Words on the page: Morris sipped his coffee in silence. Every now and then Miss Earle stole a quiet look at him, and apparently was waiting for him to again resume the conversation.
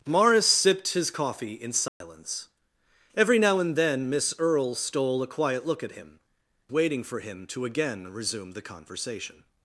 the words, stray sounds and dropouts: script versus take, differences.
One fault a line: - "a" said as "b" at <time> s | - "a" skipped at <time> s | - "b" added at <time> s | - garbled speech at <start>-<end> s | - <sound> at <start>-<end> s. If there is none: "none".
- dropout at 1.9-2.0 s
- "and apparently was" skipped at 6.2 s